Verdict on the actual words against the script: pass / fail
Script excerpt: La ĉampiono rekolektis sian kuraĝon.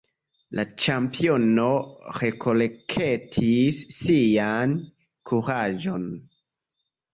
pass